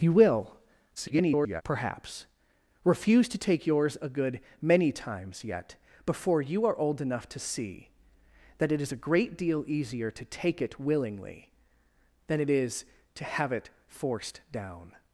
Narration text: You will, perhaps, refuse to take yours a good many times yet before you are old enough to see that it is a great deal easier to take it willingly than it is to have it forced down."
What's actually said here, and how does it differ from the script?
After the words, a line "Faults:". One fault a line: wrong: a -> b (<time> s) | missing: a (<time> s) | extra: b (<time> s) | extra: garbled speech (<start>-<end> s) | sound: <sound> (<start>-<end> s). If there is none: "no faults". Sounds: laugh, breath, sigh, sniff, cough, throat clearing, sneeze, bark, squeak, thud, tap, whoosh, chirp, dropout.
You will, [garbled] perhaps, refuse to take yours a good many times yet before you are old enough to see that it is a great deal easier to take it willingly than it is to have it forced down."
Faults:
extra: garbled speech (1.0-1.6 s)